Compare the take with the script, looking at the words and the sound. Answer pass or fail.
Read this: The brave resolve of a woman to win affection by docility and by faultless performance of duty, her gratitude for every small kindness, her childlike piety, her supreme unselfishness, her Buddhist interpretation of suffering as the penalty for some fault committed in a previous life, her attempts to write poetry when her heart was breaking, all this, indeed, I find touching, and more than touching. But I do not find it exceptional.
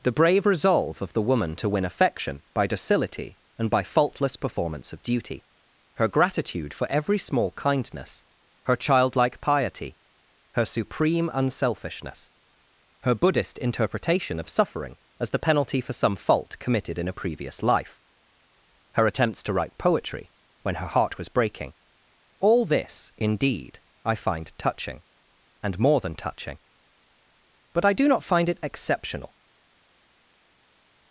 fail